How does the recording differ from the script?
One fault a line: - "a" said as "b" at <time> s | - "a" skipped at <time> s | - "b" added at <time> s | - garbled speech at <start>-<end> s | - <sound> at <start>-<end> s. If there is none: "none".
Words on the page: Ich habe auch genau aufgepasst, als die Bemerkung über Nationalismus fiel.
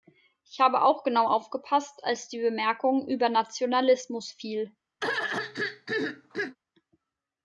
- throat clearing at 5.0-6.6 s